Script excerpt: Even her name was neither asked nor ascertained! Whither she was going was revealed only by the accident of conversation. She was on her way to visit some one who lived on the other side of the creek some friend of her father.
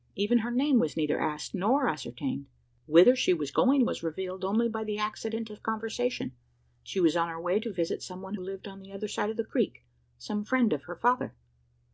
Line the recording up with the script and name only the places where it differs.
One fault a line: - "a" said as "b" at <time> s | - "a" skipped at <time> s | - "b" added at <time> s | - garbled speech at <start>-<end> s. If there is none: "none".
- "who" skipped at 8.3 s